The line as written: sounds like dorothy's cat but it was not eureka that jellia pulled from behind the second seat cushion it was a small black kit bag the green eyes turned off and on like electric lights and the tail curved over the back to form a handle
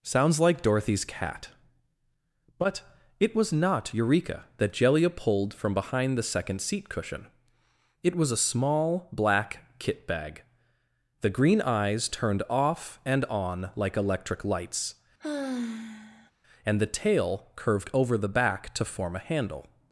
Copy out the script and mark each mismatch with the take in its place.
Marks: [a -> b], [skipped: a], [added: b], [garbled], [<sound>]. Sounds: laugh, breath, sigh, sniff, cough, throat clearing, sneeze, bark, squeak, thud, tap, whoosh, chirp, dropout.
sounds like dorothy's cat but it was not eureka that jellia pulled from behind the second seat cushion it was a small black kit bag the green eyes turned off and on like electric lights [sigh] and the tail curved over the back to form a handle